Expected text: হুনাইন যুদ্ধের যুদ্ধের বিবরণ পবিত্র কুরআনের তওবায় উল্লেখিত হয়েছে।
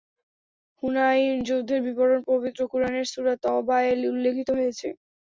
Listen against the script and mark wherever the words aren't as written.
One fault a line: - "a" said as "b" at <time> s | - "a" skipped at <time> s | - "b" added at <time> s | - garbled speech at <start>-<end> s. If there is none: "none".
- "যুদ্ধের" skipped at 1.8 s
- "সূরা" added at 3.1 s